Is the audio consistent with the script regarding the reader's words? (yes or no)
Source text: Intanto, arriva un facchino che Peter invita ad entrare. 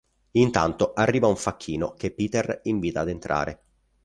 yes